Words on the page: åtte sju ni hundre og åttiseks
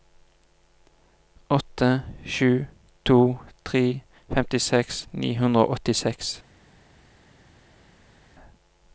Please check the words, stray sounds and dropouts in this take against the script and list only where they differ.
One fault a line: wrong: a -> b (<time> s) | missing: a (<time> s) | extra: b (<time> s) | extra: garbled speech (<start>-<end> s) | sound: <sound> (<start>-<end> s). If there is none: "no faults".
extra: to tre femtiseks (3.0 s)